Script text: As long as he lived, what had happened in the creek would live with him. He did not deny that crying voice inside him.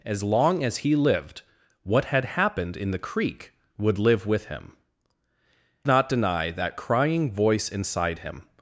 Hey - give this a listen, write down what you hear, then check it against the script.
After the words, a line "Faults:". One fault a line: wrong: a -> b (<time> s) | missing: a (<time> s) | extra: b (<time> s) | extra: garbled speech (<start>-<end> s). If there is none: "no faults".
As long as he lived, what had happened in the creek would live with him. Not deny that crying voice inside him.
Faults:
missing: He did (4.8 s)